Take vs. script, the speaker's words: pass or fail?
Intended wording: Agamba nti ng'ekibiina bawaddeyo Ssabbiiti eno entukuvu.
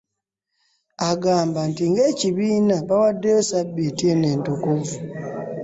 pass